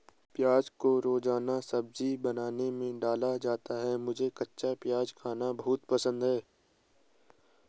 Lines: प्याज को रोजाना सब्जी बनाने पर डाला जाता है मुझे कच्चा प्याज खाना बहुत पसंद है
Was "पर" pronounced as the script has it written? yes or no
no